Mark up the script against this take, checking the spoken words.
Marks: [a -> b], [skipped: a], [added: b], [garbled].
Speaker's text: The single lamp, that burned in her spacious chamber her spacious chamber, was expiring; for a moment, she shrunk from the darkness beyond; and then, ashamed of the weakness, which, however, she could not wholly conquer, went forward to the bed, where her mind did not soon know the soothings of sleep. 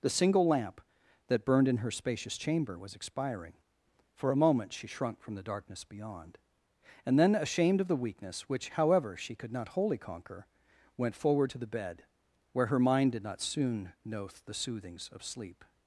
The single lamp, that burned in her spacious chamber [skipped: her spacious chamber,] was expiring; for a moment, she shrunk from the darkness beyond; and then, ashamed of the weakness, which, however, she could not wholly conquer, went forward to the bed, where her mind did not soon know the soothings of sleep.